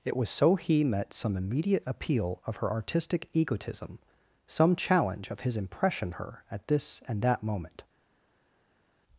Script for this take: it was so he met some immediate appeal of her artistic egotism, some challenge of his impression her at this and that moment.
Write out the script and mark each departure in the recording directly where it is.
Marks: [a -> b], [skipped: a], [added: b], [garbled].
it was so he met some immediate appeal of her artistic egotism, some challenge of his impression her at this and that moment.